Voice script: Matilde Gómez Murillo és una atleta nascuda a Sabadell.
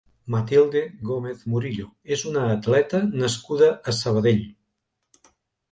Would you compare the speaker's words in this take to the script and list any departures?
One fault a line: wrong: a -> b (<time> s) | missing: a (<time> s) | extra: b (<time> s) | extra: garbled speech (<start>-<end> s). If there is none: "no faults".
no faults